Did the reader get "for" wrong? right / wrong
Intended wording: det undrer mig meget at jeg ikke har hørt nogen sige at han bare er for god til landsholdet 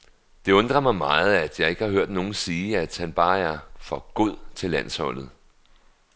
right